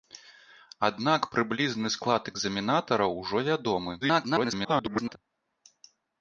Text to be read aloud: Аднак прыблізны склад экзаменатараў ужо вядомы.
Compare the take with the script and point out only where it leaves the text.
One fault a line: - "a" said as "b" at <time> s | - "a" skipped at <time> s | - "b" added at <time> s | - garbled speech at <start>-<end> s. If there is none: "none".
- garbled speech at 4.0-5.2 s